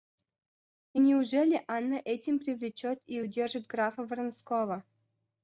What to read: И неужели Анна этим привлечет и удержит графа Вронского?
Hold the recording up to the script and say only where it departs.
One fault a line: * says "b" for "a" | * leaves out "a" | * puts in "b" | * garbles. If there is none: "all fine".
all fine